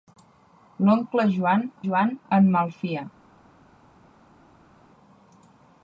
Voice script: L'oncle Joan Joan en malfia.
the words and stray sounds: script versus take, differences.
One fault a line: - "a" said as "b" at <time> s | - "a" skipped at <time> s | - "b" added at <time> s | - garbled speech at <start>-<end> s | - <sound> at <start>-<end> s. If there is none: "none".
none